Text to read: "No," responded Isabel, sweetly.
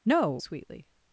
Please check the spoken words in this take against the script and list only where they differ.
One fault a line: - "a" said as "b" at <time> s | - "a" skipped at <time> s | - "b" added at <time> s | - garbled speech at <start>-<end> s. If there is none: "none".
- "responded Isabel" skipped at 0.3 s